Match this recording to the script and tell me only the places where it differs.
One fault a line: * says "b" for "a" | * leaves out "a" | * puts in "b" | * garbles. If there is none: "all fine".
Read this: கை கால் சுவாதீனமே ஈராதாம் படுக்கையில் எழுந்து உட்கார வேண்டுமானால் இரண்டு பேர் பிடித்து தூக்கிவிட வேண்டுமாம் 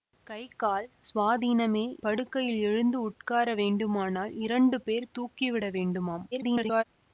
* leaves out "ஈராதாம்"
* leaves out "பிடித்து"
* garbles